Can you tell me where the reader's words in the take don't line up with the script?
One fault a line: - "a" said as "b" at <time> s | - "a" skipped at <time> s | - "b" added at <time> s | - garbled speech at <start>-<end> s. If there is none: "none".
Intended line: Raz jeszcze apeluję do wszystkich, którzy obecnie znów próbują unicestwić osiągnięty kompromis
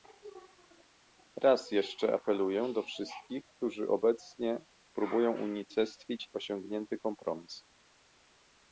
- "znów" skipped at 4.7 s